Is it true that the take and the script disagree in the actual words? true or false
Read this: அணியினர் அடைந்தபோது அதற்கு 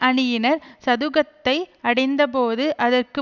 true